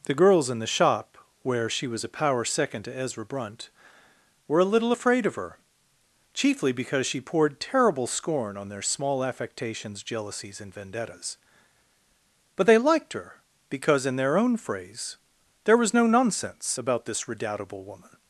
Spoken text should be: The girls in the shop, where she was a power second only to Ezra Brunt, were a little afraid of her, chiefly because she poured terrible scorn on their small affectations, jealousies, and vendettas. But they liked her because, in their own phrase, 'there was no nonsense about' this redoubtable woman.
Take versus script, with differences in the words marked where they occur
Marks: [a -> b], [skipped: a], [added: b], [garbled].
The girls in the shop, where she was a power second [skipped: only] to Ezra Brunt, were a little afraid of her, chiefly because she poured terrible scorn on their small affectations, jealousies, and vendettas. But they liked her because, in their own phrase, 'there was no nonsense about' this redoubtable woman.